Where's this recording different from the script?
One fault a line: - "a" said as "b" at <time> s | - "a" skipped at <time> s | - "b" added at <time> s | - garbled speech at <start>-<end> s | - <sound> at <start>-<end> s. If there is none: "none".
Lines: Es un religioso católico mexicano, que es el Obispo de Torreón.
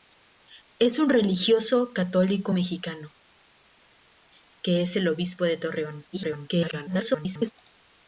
- garbled speech at 6.1-7.5 s